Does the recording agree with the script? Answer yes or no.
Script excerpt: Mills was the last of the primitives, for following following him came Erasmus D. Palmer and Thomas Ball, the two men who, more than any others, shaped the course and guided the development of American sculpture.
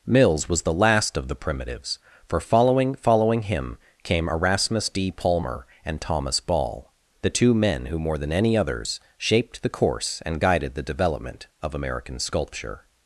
yes